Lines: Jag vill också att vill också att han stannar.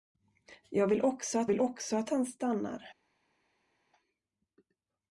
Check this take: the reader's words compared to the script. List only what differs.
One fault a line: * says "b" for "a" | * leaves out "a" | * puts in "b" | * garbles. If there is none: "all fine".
all fine